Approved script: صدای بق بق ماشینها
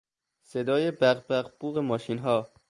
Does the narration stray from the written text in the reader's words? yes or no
yes